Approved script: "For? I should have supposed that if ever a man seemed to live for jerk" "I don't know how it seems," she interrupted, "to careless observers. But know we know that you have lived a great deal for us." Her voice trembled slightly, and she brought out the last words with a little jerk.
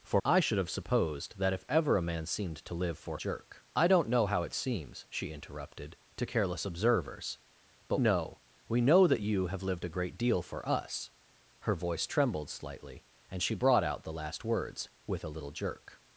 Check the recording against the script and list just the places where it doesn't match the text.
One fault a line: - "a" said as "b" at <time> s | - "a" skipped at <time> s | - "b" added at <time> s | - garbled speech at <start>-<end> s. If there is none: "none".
none